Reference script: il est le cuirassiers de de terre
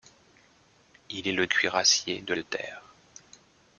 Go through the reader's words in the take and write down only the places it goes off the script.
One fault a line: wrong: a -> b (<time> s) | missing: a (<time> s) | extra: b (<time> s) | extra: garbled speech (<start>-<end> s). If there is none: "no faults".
no faults